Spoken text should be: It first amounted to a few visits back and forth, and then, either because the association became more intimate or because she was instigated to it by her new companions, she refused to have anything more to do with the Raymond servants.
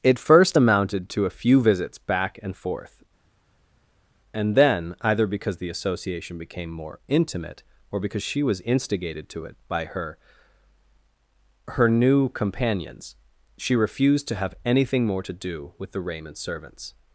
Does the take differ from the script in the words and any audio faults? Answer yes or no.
yes